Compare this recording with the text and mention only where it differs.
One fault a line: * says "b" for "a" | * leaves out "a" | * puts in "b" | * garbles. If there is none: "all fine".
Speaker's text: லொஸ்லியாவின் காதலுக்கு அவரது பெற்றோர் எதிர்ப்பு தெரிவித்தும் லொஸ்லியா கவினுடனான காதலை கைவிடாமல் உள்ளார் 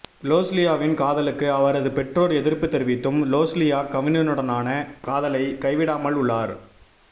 all fine